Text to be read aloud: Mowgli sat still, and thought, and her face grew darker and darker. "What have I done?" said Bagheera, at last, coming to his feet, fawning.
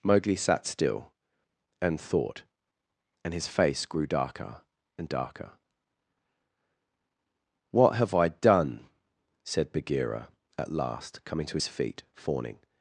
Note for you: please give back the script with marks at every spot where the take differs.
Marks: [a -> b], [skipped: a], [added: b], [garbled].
Mowgli sat still, and thought, and [her -> his] face grew darker and darker. "What have I done?" said Bagheera, at last, coming to his feet, fawning.